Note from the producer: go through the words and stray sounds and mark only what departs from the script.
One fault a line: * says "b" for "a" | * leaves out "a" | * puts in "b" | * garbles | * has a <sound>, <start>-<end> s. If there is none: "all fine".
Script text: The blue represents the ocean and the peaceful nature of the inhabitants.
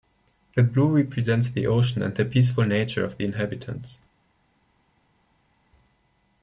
all fine